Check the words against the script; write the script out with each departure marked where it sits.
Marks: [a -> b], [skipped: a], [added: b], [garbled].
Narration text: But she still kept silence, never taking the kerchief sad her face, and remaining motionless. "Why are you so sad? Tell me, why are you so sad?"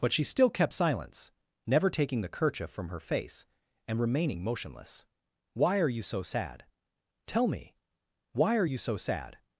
But she still kept silence, never taking the kerchief [sad -> from] her face, and remaining motionless. "Why are you so sad? Tell me, why are you so sad?"